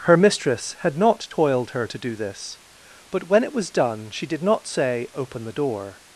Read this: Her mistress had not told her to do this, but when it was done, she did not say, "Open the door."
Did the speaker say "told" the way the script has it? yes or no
no